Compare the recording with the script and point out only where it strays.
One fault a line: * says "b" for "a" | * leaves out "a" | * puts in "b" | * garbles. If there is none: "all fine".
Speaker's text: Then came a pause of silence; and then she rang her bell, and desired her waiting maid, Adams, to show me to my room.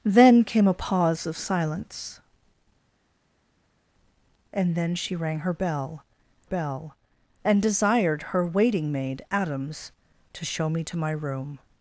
* puts in "bell"